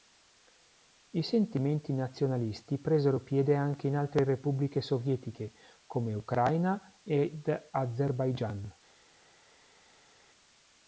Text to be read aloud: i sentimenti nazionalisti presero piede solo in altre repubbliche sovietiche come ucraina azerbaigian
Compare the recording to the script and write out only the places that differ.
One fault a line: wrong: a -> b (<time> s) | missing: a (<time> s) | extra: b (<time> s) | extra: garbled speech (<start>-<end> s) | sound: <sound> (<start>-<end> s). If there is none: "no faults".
wrong: solo -> anche (3.5 s)
extra: ed (7.0 s)